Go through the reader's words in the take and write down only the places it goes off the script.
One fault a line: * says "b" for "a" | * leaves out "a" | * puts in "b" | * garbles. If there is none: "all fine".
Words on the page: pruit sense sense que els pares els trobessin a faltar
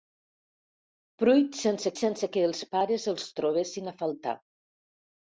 all fine